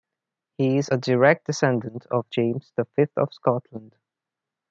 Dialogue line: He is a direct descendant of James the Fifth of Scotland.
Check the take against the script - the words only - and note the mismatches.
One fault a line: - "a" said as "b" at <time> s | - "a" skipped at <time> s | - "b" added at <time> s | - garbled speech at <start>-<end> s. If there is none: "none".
none